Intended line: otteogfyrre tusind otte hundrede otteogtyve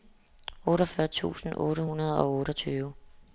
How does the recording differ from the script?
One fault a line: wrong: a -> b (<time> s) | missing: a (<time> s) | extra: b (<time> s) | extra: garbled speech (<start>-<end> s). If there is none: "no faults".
extra: og (2.2 s)